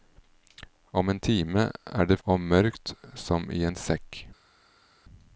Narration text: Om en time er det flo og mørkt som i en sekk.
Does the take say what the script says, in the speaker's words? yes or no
no